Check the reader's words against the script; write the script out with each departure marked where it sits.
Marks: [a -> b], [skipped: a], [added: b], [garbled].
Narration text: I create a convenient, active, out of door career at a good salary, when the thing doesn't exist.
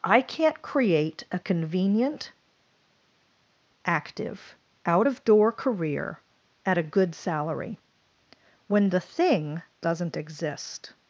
I [added: can't] create a convenient, active, out of door career at a good salary, when the thing doesn't exist.